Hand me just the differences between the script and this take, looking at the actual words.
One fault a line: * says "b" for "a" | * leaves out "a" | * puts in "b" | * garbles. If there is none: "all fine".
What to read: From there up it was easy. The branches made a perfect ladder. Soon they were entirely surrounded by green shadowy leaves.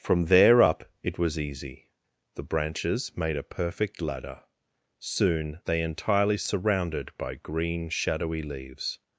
* leaves out "were"